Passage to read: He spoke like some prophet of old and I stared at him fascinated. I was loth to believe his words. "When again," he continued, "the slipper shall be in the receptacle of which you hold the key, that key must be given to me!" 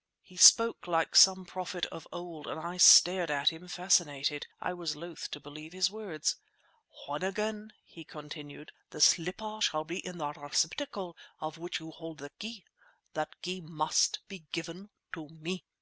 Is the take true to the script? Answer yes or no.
yes